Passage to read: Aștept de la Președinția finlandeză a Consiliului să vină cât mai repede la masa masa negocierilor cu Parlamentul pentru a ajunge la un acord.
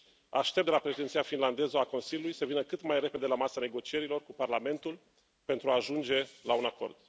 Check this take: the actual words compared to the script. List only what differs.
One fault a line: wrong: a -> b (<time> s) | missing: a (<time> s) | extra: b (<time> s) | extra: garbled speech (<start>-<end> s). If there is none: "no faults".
missing: masa (3.6 s)